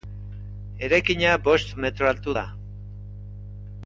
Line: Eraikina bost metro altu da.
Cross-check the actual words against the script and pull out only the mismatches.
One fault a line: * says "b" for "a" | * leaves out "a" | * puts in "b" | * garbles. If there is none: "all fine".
all fine